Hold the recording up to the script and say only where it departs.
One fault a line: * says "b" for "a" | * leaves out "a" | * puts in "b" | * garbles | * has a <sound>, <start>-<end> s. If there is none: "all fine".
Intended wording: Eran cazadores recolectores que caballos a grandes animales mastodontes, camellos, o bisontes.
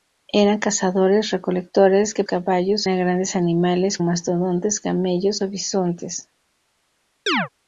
* has a chirp, 7.3-7.5 s